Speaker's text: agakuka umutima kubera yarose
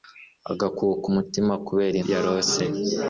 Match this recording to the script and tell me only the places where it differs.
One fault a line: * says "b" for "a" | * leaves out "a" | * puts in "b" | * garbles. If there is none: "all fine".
all fine